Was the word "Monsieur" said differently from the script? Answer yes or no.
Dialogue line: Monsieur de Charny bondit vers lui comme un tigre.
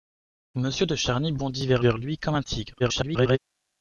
no